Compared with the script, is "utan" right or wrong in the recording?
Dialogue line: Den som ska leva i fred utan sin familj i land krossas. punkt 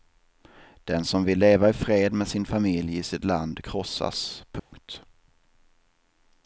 wrong